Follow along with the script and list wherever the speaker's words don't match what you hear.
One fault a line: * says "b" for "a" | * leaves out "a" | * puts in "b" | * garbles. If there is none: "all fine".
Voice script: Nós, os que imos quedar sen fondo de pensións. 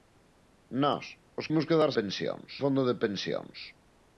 * leaves out "que"
* says "pensións" for "sen"